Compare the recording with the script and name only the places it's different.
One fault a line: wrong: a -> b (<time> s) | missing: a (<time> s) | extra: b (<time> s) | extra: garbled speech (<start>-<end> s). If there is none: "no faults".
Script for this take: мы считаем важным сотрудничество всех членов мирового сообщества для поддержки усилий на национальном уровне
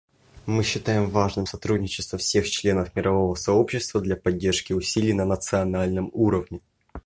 no faults